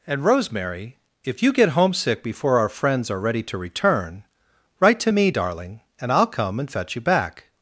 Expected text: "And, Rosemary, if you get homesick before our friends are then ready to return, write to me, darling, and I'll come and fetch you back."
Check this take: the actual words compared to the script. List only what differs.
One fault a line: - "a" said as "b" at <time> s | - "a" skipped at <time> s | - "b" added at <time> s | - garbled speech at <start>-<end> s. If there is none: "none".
- "then" skipped at 3.2 s